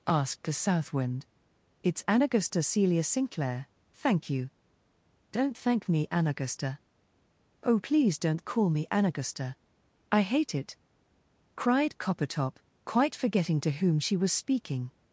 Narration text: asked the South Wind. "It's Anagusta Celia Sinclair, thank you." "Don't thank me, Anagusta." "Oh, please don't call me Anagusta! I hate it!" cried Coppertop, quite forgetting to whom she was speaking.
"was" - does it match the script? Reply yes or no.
yes